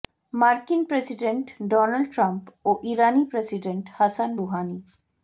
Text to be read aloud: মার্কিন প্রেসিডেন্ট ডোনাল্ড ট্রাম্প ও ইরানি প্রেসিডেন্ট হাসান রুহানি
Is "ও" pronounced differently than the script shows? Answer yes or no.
no